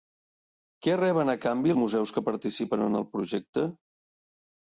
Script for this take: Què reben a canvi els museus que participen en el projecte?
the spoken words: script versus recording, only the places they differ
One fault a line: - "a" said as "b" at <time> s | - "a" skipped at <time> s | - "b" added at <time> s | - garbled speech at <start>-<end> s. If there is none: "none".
- "els" skipped at 1.7 s